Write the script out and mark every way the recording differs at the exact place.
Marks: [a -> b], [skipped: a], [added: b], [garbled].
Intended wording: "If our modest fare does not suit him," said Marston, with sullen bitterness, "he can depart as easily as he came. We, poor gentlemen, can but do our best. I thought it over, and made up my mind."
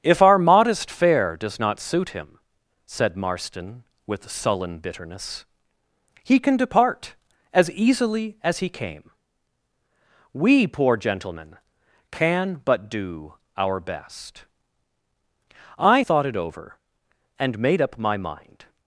"If our modest fare does not suit him," said Marston, with sullen bitterness, "he can depart as easily as he came. We, poor gentlemen, can but do our best. I thought it over, and made up my mind."